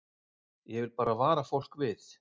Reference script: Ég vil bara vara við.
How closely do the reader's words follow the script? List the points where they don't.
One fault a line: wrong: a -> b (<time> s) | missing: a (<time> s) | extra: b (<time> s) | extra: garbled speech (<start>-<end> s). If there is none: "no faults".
extra: fólk (1.4 s)